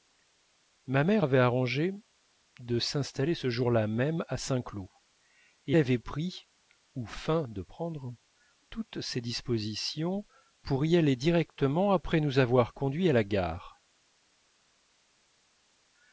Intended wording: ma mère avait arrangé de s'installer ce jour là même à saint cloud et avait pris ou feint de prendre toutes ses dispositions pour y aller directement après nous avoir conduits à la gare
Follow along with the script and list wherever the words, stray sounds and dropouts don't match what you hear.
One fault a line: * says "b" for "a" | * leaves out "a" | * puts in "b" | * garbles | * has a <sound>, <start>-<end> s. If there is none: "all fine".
all fine